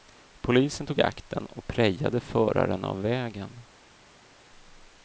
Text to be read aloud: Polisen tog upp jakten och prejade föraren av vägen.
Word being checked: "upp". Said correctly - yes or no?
no